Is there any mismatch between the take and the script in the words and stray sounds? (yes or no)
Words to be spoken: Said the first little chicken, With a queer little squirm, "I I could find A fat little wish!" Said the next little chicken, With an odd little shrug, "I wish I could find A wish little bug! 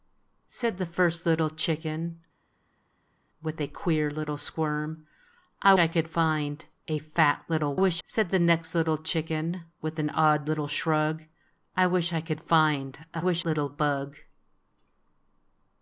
no